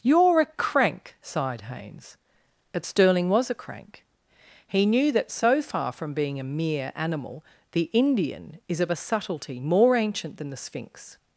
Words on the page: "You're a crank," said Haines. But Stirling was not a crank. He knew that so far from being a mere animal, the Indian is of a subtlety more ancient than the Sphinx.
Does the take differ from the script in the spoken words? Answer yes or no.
yes